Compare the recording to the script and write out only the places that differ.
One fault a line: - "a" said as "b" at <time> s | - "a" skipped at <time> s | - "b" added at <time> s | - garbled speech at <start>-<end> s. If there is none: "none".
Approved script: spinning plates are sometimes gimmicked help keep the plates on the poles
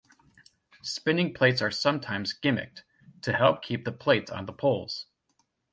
- "to" added at 3.2 s